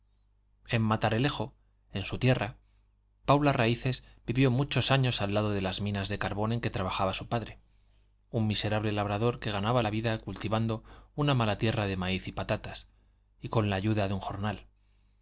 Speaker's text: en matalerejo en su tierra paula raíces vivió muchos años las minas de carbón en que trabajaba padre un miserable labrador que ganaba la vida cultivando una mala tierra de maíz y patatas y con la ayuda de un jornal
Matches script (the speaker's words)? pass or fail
fail